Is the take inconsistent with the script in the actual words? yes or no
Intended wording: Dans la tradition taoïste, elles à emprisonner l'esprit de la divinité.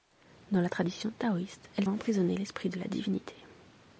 no